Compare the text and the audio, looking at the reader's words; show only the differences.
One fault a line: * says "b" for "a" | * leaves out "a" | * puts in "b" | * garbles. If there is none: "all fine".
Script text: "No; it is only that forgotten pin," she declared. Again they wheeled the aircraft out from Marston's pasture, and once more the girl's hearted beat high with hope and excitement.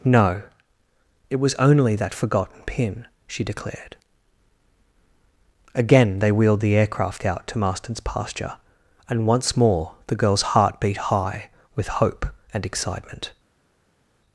* says "was" for "is"
* says "to" for "from"
* says "heart" for "hearted"